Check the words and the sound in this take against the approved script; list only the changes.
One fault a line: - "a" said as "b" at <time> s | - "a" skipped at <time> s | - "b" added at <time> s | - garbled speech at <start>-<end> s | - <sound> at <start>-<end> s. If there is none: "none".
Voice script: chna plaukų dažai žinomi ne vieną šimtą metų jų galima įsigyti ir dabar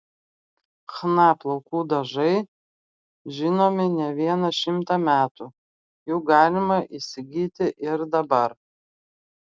none